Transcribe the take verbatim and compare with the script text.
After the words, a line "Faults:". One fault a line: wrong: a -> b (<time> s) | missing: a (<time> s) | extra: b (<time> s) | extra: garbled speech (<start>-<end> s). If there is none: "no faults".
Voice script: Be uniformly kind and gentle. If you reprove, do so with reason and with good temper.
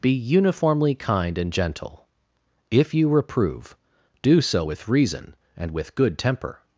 Be uniformly kind and gentle. If you reprove, do so with reason and with good temper.
Faults:
no faults